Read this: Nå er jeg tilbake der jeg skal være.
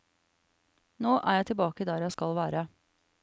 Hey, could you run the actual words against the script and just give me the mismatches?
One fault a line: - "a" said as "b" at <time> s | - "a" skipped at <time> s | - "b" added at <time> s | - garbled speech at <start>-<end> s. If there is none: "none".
none